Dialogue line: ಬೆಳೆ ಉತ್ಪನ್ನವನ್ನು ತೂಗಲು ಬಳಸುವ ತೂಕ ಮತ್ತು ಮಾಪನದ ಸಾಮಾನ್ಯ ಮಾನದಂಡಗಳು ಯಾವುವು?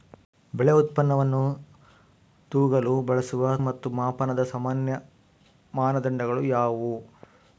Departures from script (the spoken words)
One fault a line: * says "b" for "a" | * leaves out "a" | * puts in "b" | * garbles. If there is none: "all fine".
* leaves out "ತೂಕ"